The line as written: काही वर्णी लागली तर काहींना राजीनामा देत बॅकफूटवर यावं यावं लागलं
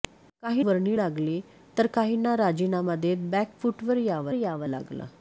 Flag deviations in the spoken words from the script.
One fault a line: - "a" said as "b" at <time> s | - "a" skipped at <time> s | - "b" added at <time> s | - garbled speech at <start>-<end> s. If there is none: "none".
none